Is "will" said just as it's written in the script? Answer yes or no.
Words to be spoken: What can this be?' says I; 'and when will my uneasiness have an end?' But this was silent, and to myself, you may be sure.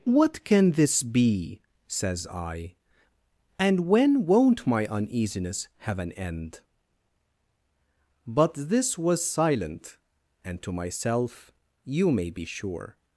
no